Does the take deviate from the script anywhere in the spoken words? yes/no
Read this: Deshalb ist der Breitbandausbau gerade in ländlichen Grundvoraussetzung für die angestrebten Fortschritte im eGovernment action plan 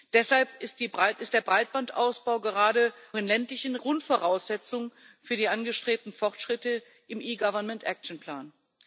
no